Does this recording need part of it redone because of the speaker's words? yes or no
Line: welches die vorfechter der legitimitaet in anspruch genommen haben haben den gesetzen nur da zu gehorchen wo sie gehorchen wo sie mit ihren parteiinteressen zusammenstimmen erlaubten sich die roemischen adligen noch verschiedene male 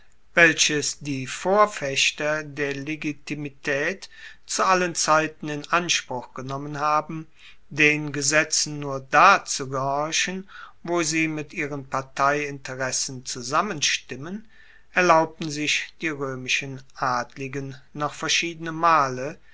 yes